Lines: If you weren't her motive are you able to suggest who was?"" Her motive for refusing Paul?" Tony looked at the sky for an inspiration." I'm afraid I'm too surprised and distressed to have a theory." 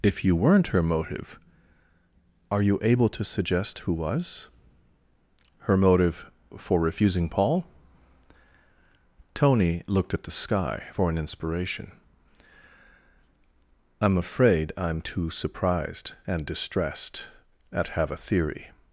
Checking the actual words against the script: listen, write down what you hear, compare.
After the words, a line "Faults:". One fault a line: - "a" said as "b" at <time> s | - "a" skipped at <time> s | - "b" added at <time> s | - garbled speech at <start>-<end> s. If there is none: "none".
If you weren't her motive are you able to suggest who was?"" Her motive for refusing Paul?" Tony looked at the sky for an inspiration." I'm afraid I'm too surprised and distressed at have a theory."
Faults:
- "to" said as "at" at 17.7 s